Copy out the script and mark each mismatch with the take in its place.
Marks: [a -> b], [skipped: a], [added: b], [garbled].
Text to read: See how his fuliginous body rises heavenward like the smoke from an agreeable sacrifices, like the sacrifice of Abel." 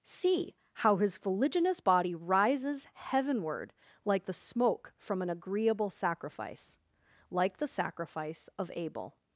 See how his fuliginous body rises heavenward like the smoke from an agreeable [sacrifices, -> sacrifice] like the sacrifice of Abel."